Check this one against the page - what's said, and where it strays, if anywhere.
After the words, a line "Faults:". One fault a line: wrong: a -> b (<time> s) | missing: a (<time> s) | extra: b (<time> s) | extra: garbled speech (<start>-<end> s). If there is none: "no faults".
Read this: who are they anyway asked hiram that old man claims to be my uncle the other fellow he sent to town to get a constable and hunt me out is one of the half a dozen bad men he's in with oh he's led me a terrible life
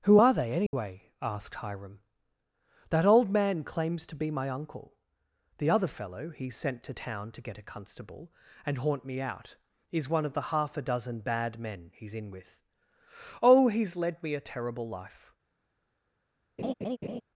who are they anyway asked hiram that old man claims to be my uncle the other fellow he sent to town to get a constable and haunt me out is one of the half a dozen bad men he's in with oh he's led me a terrible life
Faults:
wrong: hunt -> haunt (8.8 s)